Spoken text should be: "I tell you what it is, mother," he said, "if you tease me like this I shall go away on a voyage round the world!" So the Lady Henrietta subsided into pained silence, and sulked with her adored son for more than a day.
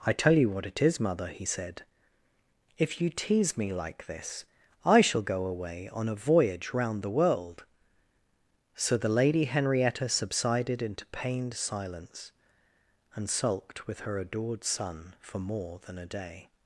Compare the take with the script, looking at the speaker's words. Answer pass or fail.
pass